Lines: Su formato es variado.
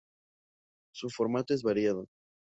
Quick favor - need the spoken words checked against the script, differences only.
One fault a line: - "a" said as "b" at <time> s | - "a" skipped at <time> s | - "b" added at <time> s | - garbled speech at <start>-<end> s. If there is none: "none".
none